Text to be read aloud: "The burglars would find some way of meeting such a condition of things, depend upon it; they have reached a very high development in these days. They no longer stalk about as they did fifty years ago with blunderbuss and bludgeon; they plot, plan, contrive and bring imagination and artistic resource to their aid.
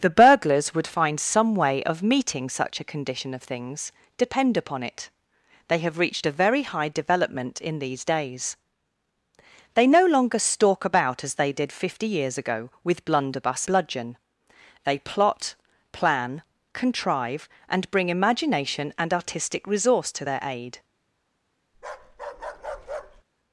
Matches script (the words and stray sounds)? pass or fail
fail